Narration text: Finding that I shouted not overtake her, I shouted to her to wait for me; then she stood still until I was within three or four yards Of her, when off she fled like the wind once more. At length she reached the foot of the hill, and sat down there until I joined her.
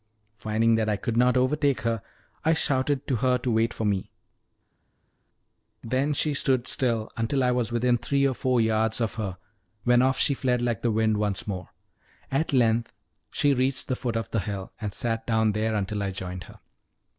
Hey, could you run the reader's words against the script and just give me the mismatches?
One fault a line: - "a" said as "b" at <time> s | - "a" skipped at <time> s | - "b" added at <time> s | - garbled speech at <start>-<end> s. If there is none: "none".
- "shouted" said as "could" at 1.0 s